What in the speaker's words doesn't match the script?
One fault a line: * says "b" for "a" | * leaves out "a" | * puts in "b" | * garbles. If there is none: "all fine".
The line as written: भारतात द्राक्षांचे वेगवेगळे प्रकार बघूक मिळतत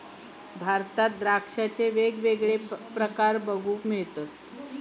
all fine